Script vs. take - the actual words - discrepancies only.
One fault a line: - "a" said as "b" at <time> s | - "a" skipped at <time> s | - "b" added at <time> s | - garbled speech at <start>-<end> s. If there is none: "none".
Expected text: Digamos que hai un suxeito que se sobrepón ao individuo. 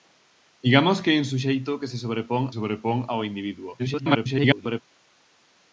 - "sobrepón" added at 2.6 s
- garbled speech at 3.8-4.8 s